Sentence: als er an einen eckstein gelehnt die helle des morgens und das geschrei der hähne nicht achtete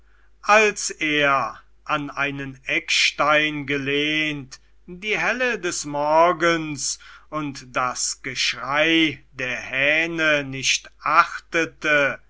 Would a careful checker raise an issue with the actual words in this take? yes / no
no